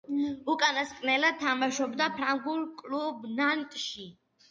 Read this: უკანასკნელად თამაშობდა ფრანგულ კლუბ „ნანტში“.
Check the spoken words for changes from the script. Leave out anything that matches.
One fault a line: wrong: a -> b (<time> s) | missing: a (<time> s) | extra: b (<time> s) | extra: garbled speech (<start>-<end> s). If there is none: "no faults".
no faults